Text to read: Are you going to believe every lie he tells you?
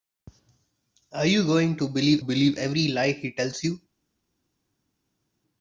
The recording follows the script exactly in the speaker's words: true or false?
false